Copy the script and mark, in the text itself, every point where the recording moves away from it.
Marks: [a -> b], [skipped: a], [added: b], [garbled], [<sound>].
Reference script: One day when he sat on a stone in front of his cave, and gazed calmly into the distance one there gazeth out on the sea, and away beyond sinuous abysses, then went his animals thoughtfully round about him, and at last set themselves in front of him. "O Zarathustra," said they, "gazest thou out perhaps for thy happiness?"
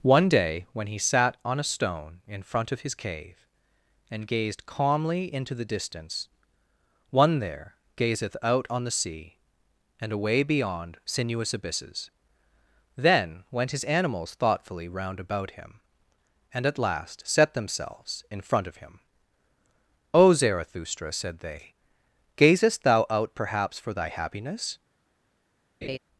One day when he sat on a stone in front of his cave, and gazed calmly into the distance one there gazeth out on the sea, and away beyond sinuous abysses, then went his animals thoughtfully round about him, and at last set themselves in front of him. "O Zarathustra," said they, "gazest thou out perhaps for thy happiness?" [laugh]